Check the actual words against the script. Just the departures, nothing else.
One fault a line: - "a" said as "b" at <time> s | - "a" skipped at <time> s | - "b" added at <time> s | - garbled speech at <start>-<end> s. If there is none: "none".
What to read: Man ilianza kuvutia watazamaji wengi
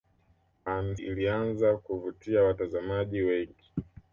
none